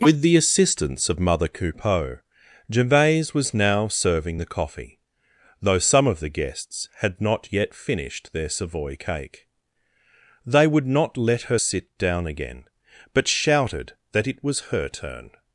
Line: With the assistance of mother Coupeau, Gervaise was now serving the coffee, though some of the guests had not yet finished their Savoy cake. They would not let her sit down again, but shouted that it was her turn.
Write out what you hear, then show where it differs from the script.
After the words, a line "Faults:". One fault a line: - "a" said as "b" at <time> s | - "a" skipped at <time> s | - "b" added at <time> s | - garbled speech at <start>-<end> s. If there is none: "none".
With the assistance of mother Coupeau, Gervaise was now serving the coffee, though some of the guests had not yet finished their Savoy cake. They would not let her sit down again, but shouted that it was her turn.
Faults:
none